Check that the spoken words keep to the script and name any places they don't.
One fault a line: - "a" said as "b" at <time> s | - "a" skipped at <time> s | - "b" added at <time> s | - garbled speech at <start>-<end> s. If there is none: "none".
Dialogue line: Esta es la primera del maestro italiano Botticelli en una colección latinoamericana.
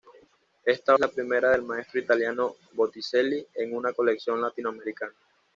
none